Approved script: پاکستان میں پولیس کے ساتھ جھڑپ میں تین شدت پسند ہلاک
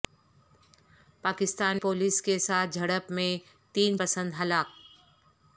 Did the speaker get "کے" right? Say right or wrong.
right